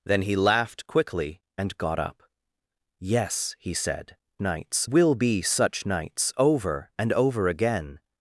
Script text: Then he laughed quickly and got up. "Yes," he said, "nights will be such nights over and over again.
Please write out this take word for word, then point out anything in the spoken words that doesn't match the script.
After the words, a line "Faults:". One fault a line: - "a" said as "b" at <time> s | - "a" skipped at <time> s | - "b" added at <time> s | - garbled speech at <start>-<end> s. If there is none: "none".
Then he laughed quickly and got up. "Yes," he said, "nights will be such nights over and over again.
Faults:
none